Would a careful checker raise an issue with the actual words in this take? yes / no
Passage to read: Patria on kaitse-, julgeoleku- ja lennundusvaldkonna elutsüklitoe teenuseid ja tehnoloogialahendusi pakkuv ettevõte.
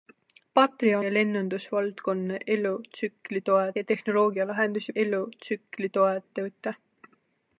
yes